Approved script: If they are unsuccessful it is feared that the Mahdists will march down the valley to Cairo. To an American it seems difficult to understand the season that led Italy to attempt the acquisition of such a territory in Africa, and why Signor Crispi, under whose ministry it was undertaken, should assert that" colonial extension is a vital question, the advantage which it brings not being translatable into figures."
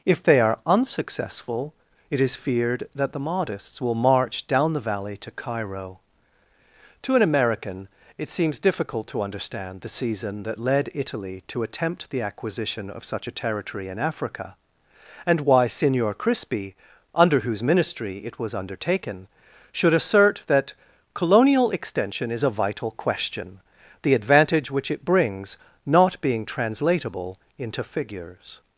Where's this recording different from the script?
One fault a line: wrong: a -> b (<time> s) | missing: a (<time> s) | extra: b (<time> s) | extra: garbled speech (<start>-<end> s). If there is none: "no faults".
no faults